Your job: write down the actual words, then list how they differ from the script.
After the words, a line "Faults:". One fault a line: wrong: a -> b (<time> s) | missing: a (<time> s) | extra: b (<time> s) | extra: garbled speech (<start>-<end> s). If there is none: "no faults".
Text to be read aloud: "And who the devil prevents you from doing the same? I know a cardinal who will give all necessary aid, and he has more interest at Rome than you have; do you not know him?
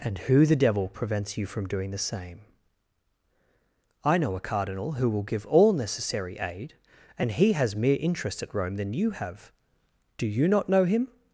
"And who the devil prevents you from doing the same? I know a cardinal who will give all necessary aid, and he has mere interest at Rome than you have; do you not know him?
Faults:
wrong: more -> mere (7.8 s)